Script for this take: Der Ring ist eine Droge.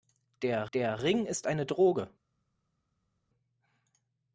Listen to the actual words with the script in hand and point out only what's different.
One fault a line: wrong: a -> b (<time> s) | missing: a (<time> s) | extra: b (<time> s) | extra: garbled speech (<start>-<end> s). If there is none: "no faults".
extra: der (0.7 s)